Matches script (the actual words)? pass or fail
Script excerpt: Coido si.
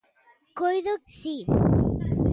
pass